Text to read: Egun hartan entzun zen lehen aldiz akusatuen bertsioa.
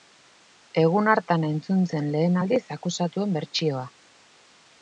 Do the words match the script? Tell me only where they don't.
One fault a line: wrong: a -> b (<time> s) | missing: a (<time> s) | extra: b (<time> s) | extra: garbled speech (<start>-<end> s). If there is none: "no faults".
no faults